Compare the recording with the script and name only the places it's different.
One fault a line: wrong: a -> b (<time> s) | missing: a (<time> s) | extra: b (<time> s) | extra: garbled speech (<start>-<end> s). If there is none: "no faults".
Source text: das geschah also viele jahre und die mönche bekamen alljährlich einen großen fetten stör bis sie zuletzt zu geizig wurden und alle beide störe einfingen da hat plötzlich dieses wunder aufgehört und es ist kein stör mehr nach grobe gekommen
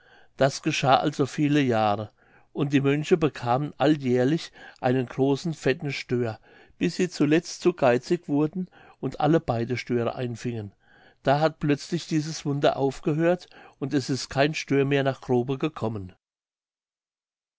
no faults